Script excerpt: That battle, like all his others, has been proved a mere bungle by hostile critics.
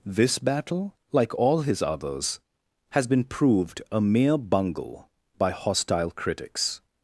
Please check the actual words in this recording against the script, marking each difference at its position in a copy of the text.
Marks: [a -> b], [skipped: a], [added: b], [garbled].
[That -> This] battle, like all his others, has been proved a mere bungle by hostile critics.